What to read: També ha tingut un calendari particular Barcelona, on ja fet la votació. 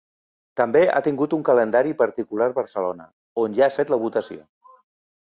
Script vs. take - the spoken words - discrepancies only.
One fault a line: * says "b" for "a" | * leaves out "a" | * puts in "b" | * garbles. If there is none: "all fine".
all fine